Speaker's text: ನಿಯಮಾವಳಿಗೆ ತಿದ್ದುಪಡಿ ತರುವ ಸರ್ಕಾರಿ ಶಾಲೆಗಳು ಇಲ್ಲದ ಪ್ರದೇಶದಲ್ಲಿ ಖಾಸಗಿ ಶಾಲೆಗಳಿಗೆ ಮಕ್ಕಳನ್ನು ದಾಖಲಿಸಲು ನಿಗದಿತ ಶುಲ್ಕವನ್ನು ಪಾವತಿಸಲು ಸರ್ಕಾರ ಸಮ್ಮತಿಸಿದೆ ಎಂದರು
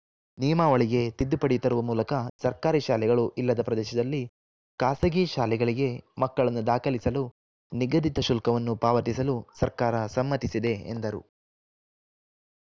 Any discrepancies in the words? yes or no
yes